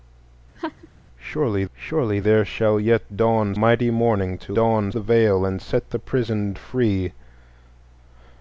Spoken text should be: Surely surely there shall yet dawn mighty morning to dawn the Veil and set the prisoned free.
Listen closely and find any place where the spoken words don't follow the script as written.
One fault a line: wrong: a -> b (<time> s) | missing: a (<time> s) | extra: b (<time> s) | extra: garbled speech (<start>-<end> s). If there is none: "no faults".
no faults